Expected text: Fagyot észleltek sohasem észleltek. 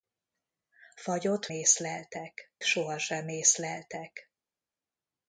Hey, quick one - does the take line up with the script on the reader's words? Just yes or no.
yes